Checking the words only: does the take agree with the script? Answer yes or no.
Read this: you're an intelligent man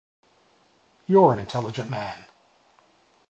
yes